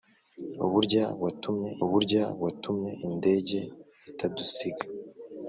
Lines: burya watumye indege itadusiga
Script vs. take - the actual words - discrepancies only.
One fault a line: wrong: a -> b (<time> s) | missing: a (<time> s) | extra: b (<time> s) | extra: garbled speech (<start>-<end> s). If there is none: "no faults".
extra: burya watumye (1.9 s)